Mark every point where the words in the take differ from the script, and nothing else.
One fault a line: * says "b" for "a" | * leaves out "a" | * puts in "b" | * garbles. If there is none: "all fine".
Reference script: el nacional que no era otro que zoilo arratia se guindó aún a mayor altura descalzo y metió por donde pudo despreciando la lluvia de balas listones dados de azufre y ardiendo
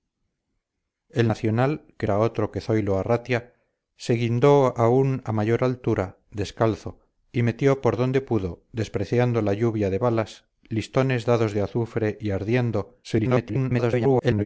* leaves out "no"
* garbles